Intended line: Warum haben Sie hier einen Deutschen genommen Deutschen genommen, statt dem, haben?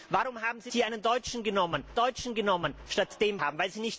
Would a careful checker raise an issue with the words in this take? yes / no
no